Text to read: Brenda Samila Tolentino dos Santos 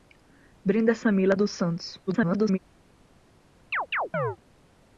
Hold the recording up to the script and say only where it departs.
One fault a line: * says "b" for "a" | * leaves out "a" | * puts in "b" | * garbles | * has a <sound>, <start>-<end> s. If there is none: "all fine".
* leaves out "Tolentino"
* garbles
* has a chirp, 3.7-4.4 s